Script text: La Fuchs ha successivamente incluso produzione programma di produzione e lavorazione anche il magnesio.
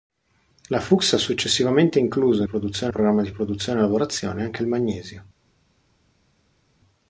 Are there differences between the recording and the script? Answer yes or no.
no